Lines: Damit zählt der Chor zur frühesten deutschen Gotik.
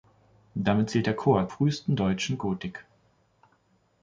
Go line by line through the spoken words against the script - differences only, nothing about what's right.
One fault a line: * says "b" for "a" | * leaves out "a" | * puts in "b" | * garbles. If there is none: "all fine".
* leaves out "zur"